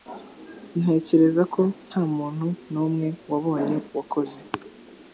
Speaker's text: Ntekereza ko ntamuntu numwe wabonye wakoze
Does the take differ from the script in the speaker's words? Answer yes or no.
no